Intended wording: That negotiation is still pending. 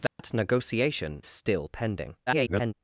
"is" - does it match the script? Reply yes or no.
no